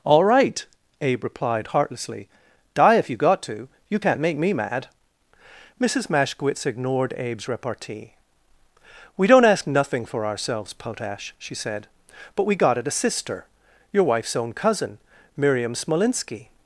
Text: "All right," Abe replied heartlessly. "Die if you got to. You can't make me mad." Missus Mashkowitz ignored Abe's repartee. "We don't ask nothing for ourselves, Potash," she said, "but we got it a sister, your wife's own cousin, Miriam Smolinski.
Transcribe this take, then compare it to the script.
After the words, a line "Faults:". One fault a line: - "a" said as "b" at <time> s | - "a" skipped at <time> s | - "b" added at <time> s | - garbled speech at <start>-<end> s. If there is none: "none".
"All right," Abe replied heartlessly. "Die if you got to. You can't make me mad." Missus Mashkowitz ignored Abe's repartee. "We don't ask nothing for ourselves, Potash," she said, "but we got it a sister, your wife's own cousin, Miriam Smolinski.
Faults:
none